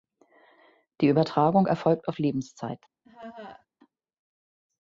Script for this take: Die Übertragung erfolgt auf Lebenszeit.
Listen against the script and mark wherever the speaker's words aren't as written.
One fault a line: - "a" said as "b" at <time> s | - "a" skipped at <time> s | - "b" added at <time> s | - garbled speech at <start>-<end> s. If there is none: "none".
none